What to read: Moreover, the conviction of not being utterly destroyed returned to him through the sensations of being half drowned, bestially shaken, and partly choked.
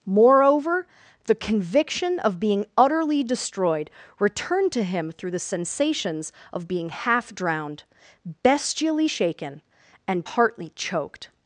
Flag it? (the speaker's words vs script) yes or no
yes